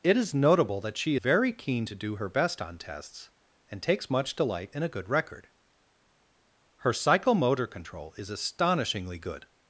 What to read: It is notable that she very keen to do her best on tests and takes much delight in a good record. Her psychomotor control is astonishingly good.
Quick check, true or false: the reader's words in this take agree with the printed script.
true